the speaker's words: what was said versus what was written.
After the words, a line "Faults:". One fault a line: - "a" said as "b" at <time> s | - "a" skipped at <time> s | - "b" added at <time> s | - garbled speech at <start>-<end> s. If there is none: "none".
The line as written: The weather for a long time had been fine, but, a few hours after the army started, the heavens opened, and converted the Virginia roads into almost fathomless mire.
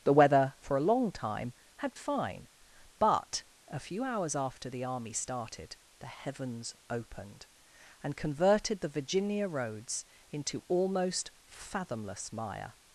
The weather for a long time had fine, but, a few hours after the army started, the heavens opened, and converted the Virginia roads into almost fathomless mire.
Faults:
- "been" skipped at 2.0 s